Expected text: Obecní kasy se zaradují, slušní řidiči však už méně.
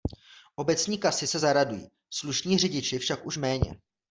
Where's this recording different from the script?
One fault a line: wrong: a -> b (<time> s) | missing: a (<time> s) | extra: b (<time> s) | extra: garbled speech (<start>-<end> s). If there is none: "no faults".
no faults